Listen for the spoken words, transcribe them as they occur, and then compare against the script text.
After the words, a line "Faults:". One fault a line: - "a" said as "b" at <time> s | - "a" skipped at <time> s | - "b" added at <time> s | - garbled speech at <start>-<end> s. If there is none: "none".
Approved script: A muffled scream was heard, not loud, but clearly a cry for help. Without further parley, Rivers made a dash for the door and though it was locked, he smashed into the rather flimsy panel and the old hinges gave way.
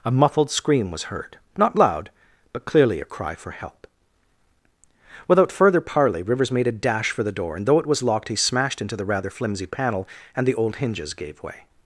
A muffled scream was heard, not loud, but clearly a cry for help. Without further parley, Rivers made a dash for the door and though it was locked, he smashed into the rather flimsy panel and the old hinges gave way.
Faults:
none